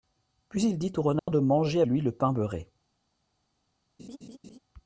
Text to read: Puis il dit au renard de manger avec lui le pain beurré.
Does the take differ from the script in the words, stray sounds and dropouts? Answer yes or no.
yes